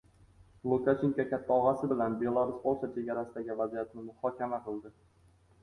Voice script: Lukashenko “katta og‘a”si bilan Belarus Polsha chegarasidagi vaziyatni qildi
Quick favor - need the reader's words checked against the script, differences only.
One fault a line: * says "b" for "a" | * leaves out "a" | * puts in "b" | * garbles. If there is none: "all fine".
* puts in "muhokama"